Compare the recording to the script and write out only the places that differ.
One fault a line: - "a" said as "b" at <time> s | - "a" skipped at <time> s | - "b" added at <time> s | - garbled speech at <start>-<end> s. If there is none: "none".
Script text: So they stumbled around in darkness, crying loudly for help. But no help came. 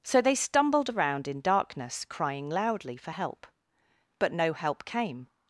none